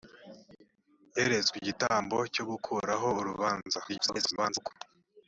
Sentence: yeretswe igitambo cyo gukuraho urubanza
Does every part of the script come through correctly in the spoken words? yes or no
no